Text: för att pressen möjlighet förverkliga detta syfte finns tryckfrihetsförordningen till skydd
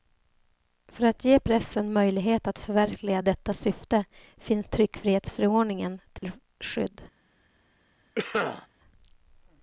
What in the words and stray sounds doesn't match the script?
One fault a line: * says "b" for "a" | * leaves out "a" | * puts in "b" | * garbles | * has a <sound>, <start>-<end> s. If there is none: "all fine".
* puts in "ge"
* puts in "att"
* has a dropout, 6.2-6.2 s
* has a cough, 8.2-8.7 s